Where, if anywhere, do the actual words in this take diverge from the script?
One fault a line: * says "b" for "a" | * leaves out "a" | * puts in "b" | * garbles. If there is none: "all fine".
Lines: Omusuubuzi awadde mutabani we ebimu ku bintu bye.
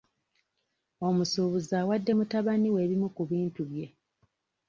all fine